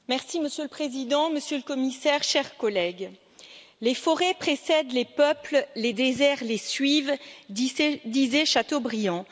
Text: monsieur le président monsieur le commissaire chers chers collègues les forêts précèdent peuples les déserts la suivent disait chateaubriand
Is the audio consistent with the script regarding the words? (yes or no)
no